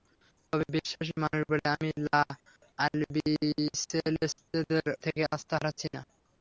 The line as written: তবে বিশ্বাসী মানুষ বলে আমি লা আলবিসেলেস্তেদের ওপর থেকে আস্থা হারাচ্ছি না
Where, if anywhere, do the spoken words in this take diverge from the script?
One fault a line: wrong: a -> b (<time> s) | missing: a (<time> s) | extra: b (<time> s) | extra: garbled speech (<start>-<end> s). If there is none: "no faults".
missing: ওপর (4.3 s)